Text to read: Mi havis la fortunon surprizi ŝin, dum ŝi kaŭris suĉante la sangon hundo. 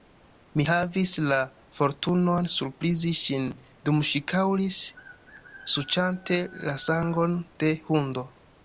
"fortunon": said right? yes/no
yes